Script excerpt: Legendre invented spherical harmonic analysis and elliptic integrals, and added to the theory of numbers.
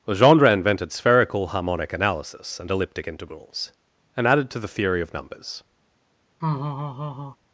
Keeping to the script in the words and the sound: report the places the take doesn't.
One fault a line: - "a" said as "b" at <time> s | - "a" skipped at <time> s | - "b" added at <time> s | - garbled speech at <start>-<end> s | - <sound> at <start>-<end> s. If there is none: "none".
- laugh at 6.4-7.4 s